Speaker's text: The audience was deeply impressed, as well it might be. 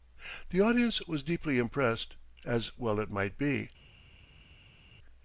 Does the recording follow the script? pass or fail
pass